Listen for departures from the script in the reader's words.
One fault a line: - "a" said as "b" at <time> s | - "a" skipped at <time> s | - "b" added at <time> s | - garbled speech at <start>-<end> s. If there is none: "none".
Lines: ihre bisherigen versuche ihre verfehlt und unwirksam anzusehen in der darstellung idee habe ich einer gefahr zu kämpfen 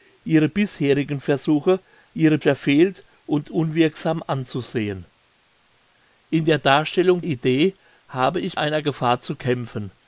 none